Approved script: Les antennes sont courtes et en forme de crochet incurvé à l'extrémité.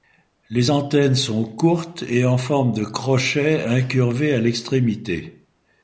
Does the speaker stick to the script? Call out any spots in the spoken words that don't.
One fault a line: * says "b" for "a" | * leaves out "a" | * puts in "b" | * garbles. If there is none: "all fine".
all fine